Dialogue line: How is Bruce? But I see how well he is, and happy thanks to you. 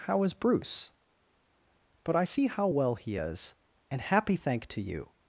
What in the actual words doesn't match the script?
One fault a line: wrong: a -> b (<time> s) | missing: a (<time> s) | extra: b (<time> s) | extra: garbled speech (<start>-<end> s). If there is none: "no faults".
wrong: thanks -> thank (4.3 s)